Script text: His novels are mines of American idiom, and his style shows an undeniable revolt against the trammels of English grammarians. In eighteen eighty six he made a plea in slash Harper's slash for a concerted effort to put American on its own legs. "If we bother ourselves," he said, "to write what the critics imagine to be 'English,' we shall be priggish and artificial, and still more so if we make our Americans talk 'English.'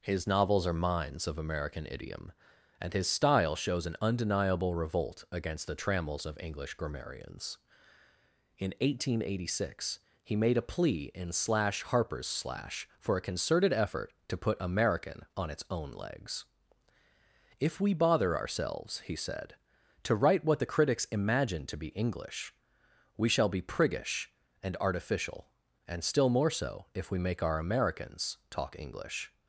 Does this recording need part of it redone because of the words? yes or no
no